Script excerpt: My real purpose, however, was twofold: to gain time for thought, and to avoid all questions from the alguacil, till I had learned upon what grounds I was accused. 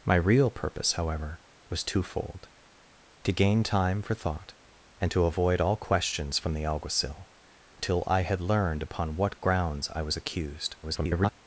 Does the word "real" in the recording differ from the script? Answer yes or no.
no